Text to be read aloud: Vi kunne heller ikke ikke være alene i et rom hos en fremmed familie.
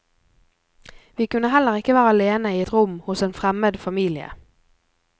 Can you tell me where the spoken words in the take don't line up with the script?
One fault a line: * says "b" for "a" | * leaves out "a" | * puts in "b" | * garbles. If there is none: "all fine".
* leaves out "ikke"